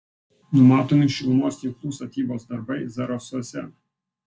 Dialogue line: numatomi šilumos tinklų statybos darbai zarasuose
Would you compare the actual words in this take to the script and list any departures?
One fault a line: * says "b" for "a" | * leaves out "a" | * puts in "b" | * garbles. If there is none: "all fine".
all fine